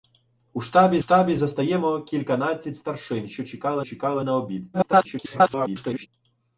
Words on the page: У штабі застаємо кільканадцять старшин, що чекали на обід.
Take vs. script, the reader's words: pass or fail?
fail